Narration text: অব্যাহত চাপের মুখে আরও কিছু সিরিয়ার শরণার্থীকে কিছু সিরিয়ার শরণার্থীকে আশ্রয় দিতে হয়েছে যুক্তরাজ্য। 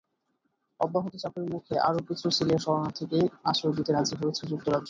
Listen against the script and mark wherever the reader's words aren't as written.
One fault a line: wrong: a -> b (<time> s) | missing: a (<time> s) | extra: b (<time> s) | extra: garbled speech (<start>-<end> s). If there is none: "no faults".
missing: কিছু সিরিয়ার শরণার্থীকে (3.2 s)
extra: রাজি (3.9 s)